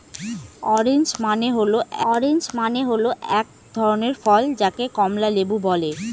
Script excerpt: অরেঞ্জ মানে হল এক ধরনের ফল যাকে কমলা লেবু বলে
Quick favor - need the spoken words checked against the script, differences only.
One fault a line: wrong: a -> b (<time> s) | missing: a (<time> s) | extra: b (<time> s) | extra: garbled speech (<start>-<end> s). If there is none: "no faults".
extra: অরেঞ্জ মানে হল (2.1 s)